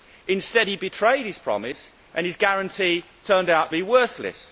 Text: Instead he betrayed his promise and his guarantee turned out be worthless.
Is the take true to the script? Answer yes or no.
yes